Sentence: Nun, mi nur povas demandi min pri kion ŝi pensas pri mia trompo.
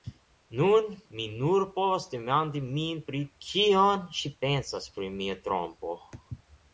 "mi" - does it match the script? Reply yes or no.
yes